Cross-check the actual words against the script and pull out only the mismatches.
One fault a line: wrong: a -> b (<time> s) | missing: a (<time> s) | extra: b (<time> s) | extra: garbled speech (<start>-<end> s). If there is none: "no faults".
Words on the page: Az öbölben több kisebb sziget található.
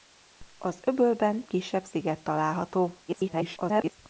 missing: több (1.4 s)
extra: garbled speech (3.1-4.0 s)